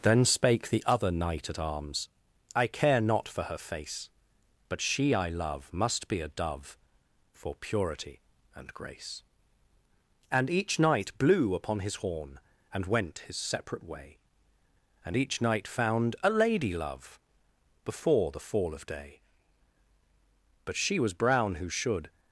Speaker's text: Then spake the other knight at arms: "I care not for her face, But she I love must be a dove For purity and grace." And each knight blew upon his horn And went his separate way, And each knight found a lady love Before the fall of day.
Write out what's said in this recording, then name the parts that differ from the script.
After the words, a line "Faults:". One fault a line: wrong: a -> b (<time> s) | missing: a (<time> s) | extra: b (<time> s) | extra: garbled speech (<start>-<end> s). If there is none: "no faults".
Then spake the other knight at arms: "I care not for her face, But she I love must be a dove For purity and grace." And each knight blew upon his horn And went his separate way, And each knight found a lady love Before the fall of day. But she was brown who should
Faults:
extra: But she was brown who should (20.6 s)